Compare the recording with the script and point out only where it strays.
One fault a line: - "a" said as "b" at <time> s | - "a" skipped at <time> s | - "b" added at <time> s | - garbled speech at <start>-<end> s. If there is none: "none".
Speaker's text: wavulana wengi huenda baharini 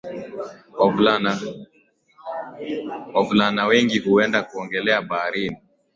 - "kuogelea" added at 4.4 s